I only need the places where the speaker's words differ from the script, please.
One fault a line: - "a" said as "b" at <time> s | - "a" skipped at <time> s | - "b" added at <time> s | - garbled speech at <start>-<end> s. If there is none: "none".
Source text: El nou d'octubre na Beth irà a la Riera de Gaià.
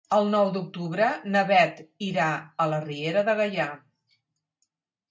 none